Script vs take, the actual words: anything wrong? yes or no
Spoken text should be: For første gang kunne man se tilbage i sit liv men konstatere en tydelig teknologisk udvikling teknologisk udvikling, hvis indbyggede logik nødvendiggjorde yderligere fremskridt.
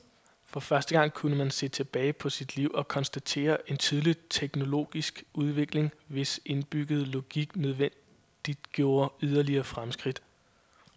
yes